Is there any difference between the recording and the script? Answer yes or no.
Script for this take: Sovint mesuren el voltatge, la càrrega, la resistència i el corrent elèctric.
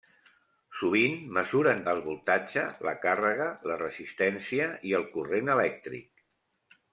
no